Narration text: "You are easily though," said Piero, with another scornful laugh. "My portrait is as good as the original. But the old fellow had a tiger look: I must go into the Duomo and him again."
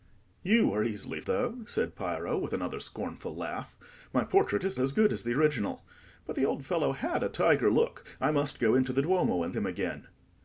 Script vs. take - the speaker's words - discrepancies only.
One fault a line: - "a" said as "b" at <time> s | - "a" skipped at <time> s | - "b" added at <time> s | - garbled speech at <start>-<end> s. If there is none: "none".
none